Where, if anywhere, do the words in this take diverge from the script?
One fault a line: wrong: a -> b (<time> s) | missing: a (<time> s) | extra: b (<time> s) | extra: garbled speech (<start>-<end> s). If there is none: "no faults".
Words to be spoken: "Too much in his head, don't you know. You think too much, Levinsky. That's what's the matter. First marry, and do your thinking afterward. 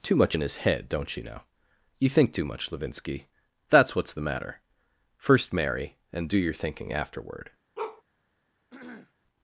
no faults